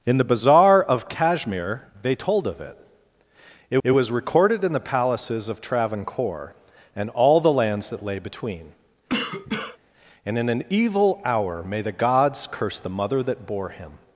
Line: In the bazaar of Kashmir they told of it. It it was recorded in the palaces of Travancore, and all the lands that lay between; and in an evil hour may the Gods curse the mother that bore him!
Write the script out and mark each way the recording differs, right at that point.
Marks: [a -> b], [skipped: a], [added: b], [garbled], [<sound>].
In the bazaar of Kashmir they told of it. It it was recorded in the palaces of Travancore, and all the lands that lay between; [cough] and in an evil hour may the Gods curse the mother that bore him!